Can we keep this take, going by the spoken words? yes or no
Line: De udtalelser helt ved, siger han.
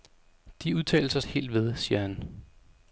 yes